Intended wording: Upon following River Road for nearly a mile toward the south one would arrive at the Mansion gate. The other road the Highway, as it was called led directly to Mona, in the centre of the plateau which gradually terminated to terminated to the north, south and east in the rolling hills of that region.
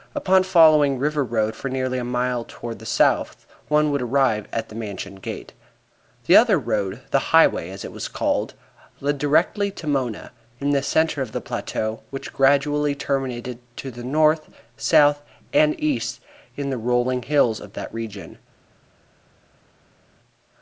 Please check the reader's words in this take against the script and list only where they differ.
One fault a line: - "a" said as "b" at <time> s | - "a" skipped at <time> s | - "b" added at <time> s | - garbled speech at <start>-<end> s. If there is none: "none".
- "terminated to" skipped at 13.9 s